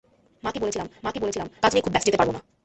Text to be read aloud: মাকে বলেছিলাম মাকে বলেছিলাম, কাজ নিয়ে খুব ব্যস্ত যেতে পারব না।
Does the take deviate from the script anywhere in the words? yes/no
no